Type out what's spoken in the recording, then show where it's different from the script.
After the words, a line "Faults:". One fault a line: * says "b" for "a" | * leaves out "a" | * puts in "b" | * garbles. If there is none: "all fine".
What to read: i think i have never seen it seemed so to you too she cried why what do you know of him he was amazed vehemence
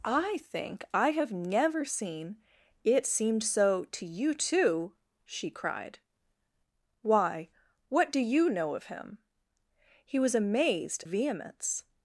i think i have never seen it seemed so to you too she cried why what do you know of him he was amazed vehemence
Faults:
all fine